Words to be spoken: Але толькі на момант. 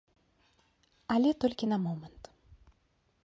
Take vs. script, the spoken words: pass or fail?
pass